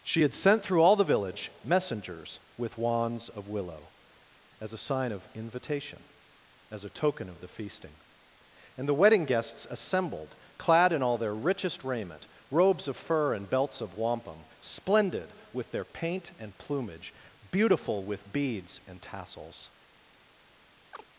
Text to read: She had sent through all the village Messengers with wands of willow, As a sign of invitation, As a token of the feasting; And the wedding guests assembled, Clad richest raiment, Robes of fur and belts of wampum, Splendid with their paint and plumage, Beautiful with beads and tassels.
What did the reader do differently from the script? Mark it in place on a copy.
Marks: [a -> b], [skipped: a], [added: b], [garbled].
She had sent through all the village Messengers with wands of willow, As a sign of invitation, As a token of the feasting; And the wedding guests assembled, Clad [added: in all their] richest raiment, Robes of fur and belts of wampum, Splendid with their paint and plumage, Beautiful with beads and tassels.